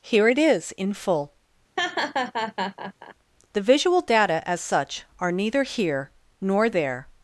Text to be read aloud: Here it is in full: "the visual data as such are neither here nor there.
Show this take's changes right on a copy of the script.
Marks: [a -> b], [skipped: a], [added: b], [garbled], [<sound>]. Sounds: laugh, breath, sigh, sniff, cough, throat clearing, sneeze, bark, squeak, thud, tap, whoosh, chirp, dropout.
Here it is in full: [laugh] "the visual data as such are neither here nor there.